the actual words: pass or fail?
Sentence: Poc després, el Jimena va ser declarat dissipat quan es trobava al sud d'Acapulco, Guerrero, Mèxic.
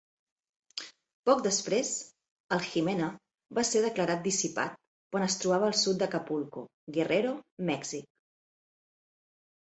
pass